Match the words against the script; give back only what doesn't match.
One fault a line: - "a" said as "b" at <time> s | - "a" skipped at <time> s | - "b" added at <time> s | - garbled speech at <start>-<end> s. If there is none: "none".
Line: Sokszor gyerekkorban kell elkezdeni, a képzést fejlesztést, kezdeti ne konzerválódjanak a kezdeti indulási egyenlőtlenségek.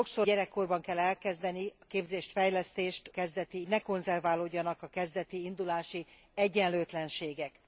none